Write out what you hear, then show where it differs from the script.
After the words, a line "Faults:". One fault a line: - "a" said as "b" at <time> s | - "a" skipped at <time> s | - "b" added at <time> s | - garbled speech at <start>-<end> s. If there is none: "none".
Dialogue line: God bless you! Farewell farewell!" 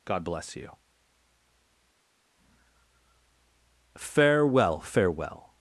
God bless you! Farewell farewell!"
Faults:
none